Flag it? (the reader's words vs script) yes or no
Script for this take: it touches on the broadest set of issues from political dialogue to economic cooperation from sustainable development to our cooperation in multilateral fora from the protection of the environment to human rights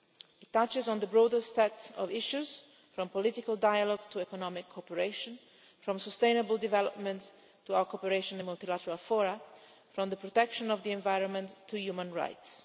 no